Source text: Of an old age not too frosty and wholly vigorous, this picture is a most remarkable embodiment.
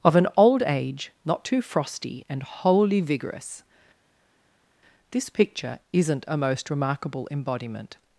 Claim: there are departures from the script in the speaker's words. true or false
true